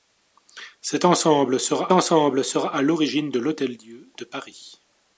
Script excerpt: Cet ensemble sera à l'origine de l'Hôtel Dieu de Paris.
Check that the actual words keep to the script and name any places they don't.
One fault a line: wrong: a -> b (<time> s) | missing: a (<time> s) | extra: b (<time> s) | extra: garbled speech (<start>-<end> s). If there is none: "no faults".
extra: ensemble sera (1.9 s)